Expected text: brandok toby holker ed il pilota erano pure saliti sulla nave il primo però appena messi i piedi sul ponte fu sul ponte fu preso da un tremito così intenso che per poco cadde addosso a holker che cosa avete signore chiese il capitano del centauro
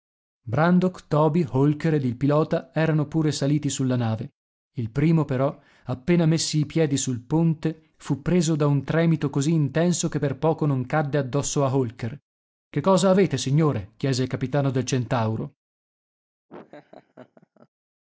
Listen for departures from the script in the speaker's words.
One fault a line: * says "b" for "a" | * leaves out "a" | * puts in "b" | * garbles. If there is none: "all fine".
* leaves out "sul ponte fu"
* puts in "non"